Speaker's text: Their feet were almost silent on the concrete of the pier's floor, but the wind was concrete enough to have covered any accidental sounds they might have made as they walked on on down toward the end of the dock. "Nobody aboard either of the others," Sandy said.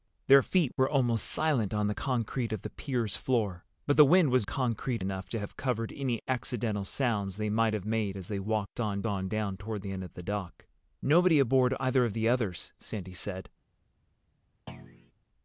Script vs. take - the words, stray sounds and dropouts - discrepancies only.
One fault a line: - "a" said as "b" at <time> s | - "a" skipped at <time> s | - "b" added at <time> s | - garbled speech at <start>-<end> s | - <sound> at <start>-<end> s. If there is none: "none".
- thud at 14.7-15.1 s